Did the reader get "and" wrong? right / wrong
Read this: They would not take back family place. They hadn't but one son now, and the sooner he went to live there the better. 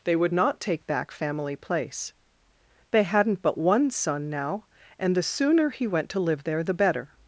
right